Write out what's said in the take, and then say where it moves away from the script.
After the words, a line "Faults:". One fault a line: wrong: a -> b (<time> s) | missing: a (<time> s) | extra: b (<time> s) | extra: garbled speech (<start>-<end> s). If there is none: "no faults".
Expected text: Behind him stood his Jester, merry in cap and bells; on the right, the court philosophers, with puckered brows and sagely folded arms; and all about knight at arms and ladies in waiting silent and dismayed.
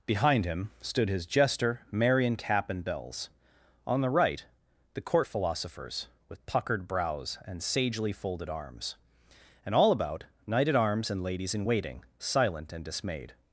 Behind him stood his Jester, merry in cap and bells; on the right, the court philosophers, with puckered brows and sagely folded arms; and all about knight at arms and ladies in waiting silent and dismayed.
Faults:
no faults